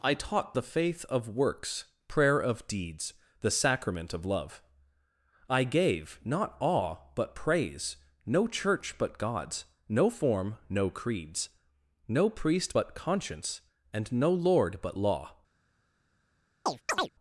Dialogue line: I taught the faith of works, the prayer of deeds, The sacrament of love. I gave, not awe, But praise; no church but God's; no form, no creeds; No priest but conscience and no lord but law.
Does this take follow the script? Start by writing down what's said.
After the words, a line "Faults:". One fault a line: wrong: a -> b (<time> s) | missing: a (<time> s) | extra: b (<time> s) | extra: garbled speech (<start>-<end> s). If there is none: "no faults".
I taught the faith of works, prayer of deeds, The sacrament of love. I gave, not awe, But praise; no church but God's; no form, no creeds; No priest but conscience and no lord but law.
Faults:
missing: the (1.9 s)